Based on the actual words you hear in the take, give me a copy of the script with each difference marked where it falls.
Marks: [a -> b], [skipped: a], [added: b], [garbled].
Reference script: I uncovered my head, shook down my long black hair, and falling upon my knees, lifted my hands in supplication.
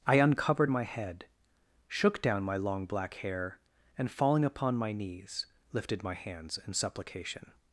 I uncovered my head, shook down my long black hair, and falling upon my knees, lifted my hands in supplication.